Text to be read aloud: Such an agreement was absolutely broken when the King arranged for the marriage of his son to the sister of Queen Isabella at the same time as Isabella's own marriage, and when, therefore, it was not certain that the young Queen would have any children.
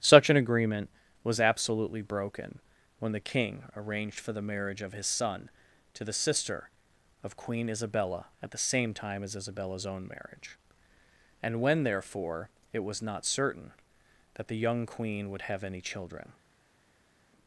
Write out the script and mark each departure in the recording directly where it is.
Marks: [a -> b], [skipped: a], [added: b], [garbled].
Such an agreement was absolutely broken when the King arranged for the marriage of his son to the sister of Queen Isabella at the same time as Isabella's own marriage, and when, therefore, it was not certain that the young Queen would have any children.